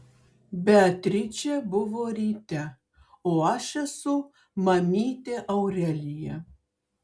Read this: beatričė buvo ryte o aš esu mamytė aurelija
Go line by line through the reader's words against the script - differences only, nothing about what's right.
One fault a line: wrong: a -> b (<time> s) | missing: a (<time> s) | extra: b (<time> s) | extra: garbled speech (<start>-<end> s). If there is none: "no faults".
no faults